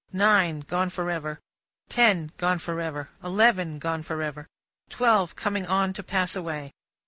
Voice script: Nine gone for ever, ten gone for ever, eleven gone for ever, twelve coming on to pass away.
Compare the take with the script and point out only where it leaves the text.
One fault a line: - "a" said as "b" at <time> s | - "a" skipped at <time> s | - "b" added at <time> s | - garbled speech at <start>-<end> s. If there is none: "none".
none